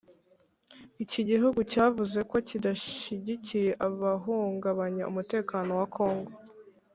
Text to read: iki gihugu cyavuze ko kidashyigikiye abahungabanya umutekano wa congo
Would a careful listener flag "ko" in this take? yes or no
no